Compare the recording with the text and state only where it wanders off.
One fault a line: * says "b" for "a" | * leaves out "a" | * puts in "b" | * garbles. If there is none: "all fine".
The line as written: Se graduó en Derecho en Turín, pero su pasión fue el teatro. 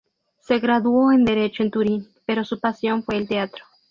all fine